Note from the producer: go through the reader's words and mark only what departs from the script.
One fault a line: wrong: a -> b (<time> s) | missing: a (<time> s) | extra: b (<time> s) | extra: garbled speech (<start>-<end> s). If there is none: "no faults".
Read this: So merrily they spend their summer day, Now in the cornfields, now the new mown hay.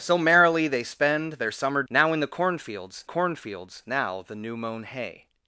missing: day (1.8 s)
extra: cornfields (3.0 s)